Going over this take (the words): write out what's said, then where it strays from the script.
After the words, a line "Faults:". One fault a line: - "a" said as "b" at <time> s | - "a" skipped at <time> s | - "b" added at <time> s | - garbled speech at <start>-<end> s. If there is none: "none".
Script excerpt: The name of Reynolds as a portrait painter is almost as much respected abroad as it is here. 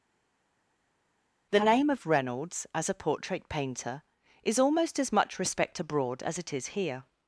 The name of Reynolds as a portrait painter is almost as much respect abroad as it is here.
Faults:
- "respected" said as "respect" at 5.4 s